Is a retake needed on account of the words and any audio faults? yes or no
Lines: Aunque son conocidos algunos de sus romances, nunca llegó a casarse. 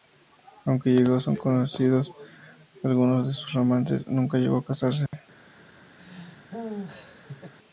yes